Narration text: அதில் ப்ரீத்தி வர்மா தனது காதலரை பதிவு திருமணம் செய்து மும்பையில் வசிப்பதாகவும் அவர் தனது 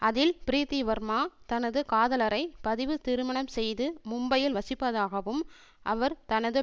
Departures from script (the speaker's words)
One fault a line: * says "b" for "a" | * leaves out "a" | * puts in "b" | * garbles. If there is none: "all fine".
all fine